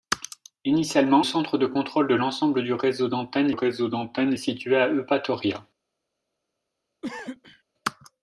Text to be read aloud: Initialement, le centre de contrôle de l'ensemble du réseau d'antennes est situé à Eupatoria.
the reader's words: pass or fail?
fail